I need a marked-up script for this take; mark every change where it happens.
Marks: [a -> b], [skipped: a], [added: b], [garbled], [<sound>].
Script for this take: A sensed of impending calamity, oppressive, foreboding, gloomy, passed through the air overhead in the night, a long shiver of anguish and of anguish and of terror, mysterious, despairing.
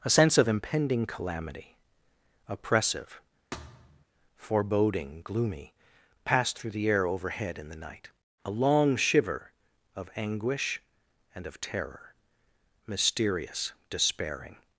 A [sensed -> sense] of impending calamity, oppressive, [thud] foreboding, gloomy, passed through the air overhead in the night, a long shiver of anguish and of [skipped: anguish and of] terror, mysterious, despairing.